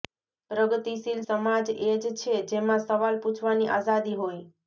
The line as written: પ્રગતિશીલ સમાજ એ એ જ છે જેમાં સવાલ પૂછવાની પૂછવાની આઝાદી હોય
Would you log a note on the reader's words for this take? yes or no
yes